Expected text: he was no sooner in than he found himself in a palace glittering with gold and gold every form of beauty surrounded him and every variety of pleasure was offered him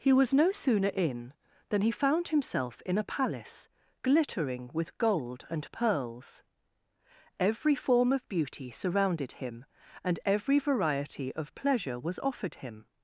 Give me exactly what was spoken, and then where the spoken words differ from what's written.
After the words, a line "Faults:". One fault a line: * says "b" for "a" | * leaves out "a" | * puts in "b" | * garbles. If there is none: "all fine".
he was no sooner in than he found himself in a palace glittering with gold and pearls every form of beauty surrounded him and every variety of pleasure was offered him
Faults:
* says "pearls" for "gold"